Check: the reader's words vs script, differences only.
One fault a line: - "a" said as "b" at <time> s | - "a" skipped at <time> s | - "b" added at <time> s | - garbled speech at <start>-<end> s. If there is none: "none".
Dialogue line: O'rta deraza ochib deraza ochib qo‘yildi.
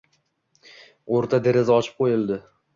- "deraza ochib" skipped at 2.0 s